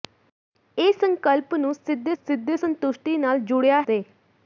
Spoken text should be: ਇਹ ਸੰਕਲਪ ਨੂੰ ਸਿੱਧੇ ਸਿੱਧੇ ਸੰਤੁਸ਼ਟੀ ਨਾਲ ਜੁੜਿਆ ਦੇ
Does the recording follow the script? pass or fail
pass